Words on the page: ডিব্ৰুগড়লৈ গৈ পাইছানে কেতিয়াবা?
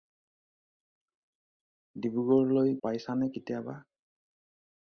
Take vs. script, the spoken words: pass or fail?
fail